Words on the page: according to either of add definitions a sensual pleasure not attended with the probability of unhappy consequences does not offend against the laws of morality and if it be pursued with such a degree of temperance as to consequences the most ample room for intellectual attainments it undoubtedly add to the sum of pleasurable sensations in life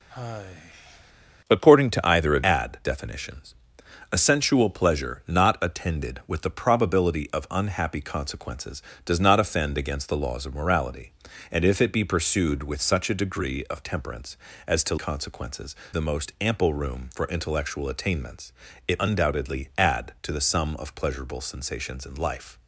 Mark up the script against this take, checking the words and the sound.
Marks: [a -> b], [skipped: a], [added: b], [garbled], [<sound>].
[sigh] according to either of add definitions a sensual pleasure not attended with the probability of unhappy consequences does not offend against the laws of morality and if it be pursued with such a degree of temperance as to consequences the most ample room for intellectual attainments it undoubtedly add to the sum of pleasurable sensations in life